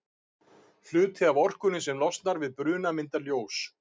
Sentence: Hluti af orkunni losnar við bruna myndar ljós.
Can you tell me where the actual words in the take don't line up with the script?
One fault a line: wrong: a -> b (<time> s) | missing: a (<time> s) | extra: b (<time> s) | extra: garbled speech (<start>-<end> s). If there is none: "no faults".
extra: sem (1.9 s)